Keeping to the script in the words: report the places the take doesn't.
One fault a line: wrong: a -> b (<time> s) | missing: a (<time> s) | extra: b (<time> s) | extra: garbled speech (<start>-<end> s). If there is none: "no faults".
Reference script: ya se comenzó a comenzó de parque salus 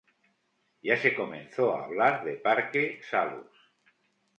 wrong: comenzó -> hablar (1.8 s)